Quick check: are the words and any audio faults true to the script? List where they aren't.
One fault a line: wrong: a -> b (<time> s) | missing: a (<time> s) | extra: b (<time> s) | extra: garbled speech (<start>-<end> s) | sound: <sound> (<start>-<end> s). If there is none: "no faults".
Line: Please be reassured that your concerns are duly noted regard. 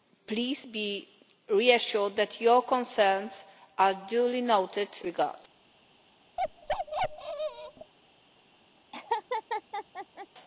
sound: bark (6.4-7.9 s)
sound: laugh (8.9-10.3 s)